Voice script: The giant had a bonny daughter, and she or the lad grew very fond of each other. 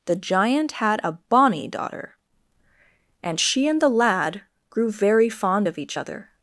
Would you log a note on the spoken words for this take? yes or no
yes